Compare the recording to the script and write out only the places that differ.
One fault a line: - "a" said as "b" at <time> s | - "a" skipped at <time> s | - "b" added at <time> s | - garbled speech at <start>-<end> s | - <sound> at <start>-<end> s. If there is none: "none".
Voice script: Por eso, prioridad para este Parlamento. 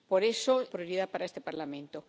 none